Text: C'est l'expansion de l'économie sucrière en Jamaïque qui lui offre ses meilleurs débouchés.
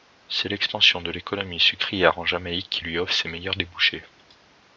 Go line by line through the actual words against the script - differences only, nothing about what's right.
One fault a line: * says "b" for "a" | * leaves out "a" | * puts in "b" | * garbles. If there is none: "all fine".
all fine